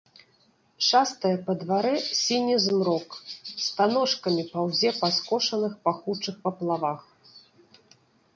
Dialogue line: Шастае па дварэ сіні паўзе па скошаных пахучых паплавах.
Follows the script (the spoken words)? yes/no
no